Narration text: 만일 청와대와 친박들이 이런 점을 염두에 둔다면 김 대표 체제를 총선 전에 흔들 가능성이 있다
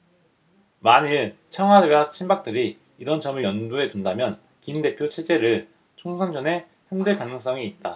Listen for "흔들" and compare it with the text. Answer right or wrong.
right